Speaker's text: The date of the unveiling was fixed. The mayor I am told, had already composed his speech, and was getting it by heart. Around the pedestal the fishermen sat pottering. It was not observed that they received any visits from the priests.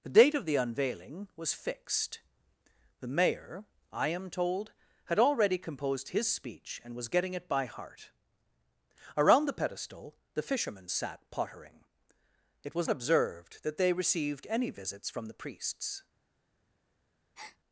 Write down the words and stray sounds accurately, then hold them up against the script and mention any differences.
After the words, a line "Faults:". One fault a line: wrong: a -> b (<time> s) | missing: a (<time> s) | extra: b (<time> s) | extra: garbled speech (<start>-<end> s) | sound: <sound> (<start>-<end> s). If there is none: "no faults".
The date of the unveiling was fixed. The mayor I am told, had already composed his speech, and was getting it by heart. Around the pedestal the fishermen sat pottering. It was observed that they received any visits from the priests.
Faults:
missing: not (12.9 s)
sound: breath (17.4-17.6 s)